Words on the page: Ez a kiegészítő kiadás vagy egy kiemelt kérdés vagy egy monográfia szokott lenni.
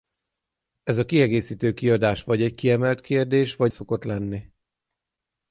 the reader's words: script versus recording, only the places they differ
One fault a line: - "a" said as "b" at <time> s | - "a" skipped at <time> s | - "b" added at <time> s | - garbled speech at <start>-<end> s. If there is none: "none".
- "egy monográfia" skipped at 3.7 s